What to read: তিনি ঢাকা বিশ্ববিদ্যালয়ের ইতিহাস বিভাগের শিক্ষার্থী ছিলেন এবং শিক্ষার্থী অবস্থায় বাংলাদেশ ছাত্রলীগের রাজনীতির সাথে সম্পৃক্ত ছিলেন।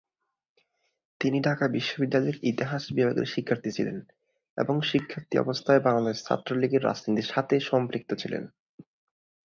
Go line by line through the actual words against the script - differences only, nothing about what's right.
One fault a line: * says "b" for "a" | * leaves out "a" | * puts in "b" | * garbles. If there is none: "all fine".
all fine